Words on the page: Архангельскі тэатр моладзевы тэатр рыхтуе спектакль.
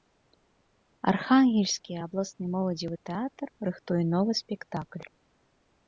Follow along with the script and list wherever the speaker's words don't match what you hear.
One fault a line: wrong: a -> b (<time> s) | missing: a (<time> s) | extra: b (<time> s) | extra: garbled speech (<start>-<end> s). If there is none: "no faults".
wrong: тэатр -> абласны (2.0 s)
extra: новы (4.1 s)